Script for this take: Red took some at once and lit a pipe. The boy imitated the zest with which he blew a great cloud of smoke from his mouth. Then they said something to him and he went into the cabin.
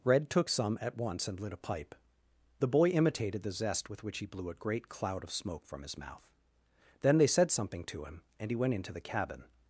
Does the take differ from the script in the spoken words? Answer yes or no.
no